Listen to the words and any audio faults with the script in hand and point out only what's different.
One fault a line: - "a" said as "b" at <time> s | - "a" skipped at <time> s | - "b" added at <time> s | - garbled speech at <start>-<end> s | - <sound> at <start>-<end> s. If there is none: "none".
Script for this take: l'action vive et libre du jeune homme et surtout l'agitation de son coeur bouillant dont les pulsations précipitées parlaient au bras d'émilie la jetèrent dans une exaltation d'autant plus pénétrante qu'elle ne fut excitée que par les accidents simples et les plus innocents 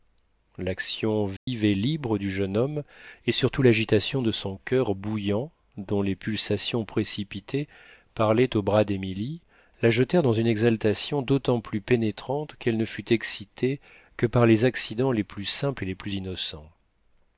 - dropout at 1.4-1.5 s
- "les plus" added at 15.1 s